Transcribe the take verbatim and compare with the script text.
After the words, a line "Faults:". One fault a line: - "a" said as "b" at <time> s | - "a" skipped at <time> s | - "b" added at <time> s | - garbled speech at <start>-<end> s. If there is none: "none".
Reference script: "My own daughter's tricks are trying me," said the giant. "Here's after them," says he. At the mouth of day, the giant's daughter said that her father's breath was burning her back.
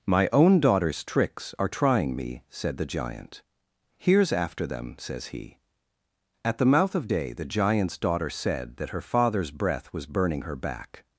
"My own daughter's tricks are trying me," said the giant. "Here's after them," says he. At the mouth of day, the giant's daughter said that her father's breath was burning her back.
Faults:
none